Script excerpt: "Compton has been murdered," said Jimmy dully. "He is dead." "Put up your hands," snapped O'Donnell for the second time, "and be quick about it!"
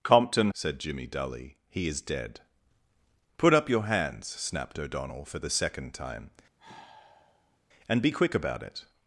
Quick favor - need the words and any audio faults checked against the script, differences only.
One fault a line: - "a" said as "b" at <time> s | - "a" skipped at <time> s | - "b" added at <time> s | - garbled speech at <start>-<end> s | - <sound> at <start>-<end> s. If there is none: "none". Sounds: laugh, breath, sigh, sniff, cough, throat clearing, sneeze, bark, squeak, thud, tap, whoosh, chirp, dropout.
- "has been murdered" skipped at 0.5 s
- sigh at 6.6-7.6 s